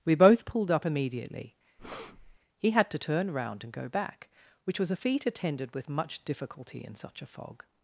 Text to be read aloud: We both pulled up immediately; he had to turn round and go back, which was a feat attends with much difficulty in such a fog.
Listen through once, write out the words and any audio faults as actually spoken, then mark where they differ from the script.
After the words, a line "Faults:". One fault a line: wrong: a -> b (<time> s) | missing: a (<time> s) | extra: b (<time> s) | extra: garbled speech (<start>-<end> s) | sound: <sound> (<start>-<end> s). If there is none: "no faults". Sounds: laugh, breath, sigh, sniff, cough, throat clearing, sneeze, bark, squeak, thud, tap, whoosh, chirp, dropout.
We both pulled up immediately; he had to turn round and go back, which was a feat attended with much difficulty in such a fog.
Faults:
sound: breath (1.8-2.4 s)
wrong: attends -> attended (5.3 s)